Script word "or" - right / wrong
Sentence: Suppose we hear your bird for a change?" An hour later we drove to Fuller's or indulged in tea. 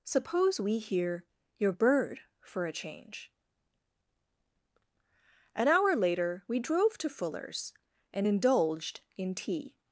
wrong